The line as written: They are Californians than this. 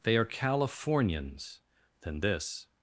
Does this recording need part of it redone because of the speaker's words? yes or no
no